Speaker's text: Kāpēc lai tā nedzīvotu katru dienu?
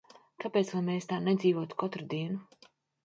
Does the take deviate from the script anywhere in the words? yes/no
yes